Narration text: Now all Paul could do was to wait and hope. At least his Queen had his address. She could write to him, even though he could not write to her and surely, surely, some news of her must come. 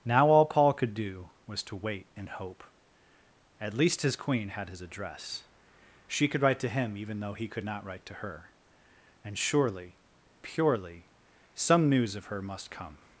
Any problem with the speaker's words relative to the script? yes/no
yes